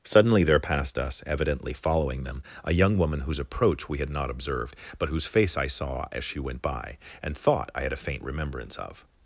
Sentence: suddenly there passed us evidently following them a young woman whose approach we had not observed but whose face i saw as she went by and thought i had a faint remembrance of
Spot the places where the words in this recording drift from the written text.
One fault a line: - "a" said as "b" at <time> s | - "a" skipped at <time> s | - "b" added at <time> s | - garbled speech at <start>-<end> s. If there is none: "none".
none